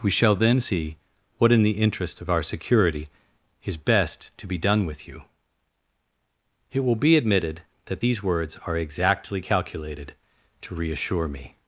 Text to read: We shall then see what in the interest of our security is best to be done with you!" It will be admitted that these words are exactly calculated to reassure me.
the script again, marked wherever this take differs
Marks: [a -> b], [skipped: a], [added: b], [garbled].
We shall then see what in the interest of our security is best to be done with you!" It will be admitted that these words are exactly calculated to reassure me.